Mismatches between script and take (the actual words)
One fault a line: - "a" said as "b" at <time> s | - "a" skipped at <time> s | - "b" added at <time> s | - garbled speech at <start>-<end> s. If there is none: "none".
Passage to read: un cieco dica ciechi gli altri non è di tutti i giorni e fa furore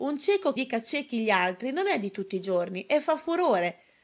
none